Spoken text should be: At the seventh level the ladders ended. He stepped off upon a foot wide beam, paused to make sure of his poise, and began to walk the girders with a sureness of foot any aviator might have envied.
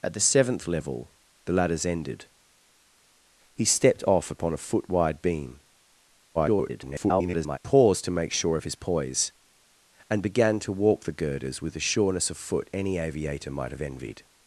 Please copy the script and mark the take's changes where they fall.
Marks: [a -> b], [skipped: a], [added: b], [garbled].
At the seventh level the ladders ended. He stepped off upon a foot wide beam, [garbled] paused to make sure of his poise, and began to walk the girders with a sureness of foot any aviator might have envied.